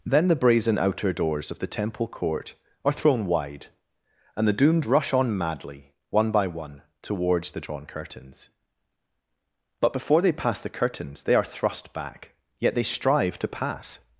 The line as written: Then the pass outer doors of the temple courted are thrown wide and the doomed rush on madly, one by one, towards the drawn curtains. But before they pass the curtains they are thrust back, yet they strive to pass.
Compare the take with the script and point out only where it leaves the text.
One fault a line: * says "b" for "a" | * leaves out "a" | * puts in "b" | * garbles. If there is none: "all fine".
* says "brazen" for "pass"
* says "court" for "courted"